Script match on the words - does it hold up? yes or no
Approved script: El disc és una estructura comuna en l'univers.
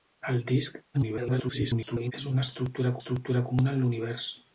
no